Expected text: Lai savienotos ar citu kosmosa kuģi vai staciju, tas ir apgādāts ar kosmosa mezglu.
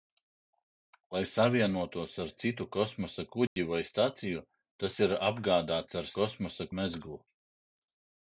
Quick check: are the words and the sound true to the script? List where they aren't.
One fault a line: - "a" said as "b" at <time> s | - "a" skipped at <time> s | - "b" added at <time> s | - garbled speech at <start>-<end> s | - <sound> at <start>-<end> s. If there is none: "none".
- dropout at 3.5-3.6 s